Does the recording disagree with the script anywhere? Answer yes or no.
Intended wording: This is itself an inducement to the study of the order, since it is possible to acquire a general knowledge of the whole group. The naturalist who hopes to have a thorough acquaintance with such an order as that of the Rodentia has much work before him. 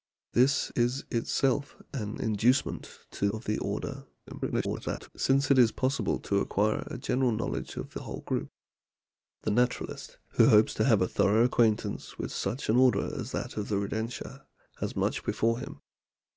yes